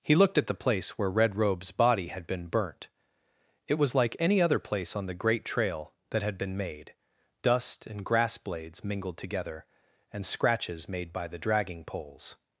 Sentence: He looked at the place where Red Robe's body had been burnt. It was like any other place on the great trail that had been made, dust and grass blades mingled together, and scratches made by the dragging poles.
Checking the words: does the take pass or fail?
pass